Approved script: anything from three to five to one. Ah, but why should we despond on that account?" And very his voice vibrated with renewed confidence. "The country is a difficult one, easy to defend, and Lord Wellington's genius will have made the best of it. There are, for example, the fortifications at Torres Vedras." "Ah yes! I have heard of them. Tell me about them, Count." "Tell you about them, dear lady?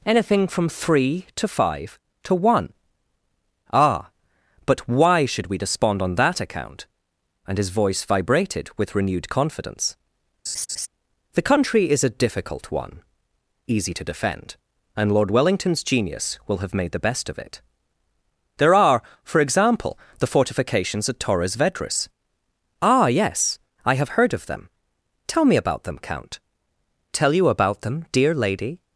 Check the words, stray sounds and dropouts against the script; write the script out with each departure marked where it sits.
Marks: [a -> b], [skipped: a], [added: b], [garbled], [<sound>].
anything from three to five to one. Ah, but why should we despond on that account?" And [skipped: very] his voice vibrated with renewed confidence. [laugh] "The country is a difficult one, easy to defend, and Lord Wellington's genius will have made the best of it. There are, for example, the fortifications at Torres Vedras." "Ah yes! I have heard of them. Tell me about them, Count." "Tell you about them, dear lady?